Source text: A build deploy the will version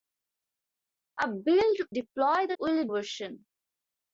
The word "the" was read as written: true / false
true